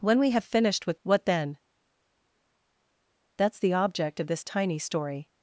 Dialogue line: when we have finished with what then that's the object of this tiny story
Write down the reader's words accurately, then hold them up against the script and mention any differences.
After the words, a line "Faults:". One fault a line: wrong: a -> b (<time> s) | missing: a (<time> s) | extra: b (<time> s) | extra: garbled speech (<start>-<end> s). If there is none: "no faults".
when we have finished with what then that's the object of this tiny story
Faults:
no faults